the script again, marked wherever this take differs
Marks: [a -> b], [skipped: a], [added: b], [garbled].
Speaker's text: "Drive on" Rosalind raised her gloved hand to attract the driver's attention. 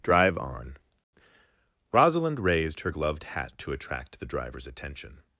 "Drive on" Rosalind raised her gloved [hand -> hat] to attract the driver's attention.